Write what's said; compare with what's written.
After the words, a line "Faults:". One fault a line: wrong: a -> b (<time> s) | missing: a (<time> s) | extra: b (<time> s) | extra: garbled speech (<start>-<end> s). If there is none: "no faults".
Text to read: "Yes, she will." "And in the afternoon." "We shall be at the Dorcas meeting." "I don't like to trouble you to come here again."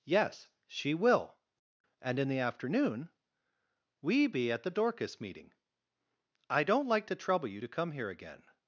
"Yes, she will." "And in the afternoon." "We be at the Dorcas meeting." "I don't like to trouble you to come here again."
Faults:
missing: shall (4.3 s)